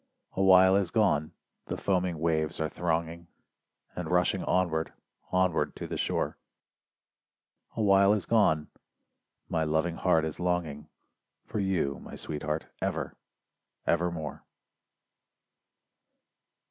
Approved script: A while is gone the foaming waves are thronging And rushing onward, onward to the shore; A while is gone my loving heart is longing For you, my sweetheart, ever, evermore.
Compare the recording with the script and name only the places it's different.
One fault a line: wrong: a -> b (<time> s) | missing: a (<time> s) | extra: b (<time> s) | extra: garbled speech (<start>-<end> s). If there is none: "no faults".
no faults